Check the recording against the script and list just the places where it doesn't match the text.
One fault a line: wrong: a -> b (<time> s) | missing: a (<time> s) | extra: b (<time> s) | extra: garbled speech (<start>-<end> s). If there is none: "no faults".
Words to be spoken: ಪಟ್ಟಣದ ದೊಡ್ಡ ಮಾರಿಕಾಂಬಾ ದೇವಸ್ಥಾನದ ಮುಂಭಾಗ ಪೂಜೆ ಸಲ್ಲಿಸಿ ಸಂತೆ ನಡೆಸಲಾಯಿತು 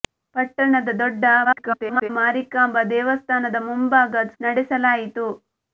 extra: garbled speech (1.4-2.1 s)
missing: ಪೂಜೆ ಸಲ್ಲಿಸಿ ಸಂತೆ (4.1 s)